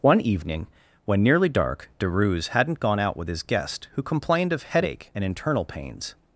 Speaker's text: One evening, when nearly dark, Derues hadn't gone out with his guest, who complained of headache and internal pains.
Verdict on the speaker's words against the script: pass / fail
pass